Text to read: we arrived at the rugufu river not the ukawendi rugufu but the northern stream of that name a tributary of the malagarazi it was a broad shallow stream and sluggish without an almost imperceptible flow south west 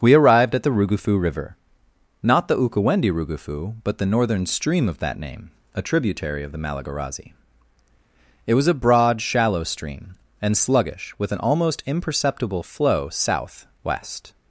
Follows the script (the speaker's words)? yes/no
no